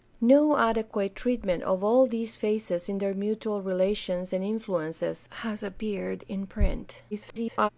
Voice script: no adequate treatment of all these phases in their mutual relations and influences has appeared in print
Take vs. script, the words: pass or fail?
fail